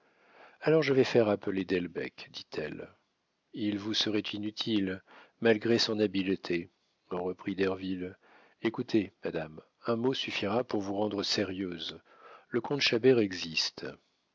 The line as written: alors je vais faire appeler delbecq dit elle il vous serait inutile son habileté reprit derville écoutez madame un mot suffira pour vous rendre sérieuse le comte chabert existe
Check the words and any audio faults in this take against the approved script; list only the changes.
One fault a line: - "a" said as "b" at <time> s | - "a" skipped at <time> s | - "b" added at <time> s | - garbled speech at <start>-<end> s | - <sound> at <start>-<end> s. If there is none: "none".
- "malgré" added at 5.4 s